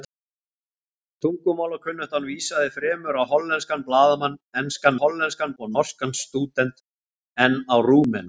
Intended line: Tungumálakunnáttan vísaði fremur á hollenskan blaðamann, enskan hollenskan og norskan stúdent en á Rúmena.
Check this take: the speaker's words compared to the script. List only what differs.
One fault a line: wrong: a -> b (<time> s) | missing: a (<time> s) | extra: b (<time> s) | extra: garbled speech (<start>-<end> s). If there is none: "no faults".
no faults